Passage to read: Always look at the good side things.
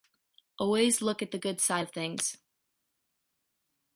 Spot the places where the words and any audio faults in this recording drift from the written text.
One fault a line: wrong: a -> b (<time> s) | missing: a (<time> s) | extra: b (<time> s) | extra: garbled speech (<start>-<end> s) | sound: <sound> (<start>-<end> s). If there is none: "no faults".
extra: of (1.8 s)